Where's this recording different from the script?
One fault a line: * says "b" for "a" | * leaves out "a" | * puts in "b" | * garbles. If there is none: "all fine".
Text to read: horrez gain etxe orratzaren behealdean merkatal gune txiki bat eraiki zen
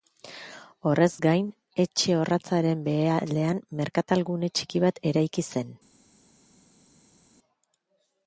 all fine